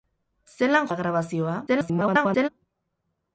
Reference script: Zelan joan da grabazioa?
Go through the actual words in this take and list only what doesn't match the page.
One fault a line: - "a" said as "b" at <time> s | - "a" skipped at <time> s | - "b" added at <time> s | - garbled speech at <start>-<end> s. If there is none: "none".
- "joan" skipped at 0.9 s
- garbled speech at 1.7-2.5 s